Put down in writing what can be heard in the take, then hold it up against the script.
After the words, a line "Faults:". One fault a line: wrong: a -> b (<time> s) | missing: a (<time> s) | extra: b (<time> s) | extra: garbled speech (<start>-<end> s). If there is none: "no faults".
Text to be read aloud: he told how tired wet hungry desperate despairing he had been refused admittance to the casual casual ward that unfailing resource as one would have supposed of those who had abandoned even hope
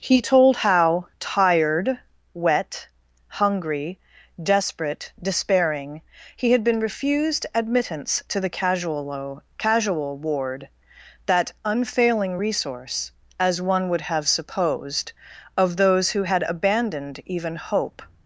he told how tired wet hungry desperate despairing he had been refused admittance to the casual casual ward that unfailing resource as one would have supposed of those who had abandoned even hope
Faults:
no faults